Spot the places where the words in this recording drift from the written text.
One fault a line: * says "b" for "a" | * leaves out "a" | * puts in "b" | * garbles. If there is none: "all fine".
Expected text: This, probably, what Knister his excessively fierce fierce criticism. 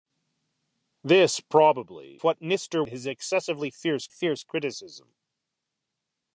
all fine